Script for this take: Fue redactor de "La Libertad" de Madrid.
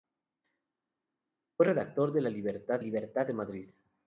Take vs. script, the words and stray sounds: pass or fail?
fail